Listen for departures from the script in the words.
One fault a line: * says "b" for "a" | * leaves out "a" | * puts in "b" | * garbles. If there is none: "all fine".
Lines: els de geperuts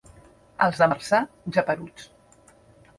* puts in "marçà"